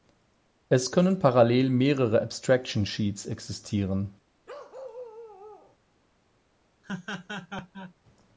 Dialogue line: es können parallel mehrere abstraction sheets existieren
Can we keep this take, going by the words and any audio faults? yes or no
no